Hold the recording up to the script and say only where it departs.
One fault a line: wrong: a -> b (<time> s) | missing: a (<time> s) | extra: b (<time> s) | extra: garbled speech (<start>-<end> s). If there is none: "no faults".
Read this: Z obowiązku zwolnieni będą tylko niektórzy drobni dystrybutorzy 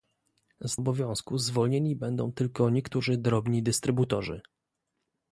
no faults